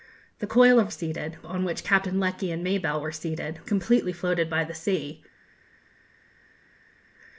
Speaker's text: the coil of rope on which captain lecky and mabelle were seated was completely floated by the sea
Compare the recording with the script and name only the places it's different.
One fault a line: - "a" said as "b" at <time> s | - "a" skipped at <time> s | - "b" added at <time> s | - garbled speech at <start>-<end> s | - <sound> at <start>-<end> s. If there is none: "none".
- "rope" said as "seated" at 0.9 s
- "was" skipped at 3.6 s